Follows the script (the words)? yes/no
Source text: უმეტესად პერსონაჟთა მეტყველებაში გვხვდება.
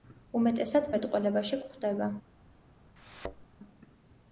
no